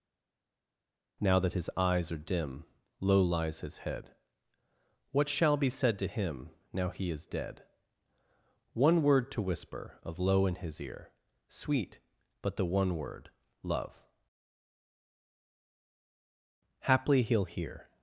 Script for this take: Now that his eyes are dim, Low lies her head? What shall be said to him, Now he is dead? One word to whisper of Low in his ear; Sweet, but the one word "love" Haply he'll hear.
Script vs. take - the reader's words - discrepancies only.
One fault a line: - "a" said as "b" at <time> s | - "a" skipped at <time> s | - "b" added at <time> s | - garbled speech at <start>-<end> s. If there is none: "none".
- "her" said as "his" at 3.6 s